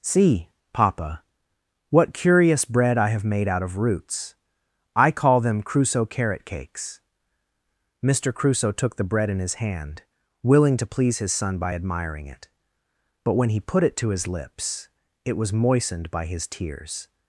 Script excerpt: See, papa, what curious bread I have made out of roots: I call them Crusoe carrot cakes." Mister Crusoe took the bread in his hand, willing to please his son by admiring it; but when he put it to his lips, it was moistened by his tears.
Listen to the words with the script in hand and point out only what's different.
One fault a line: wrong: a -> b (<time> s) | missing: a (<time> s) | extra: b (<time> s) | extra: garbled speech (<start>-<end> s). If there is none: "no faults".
no faults